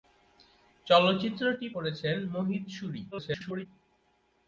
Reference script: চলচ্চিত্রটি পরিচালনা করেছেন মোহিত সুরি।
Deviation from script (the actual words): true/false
true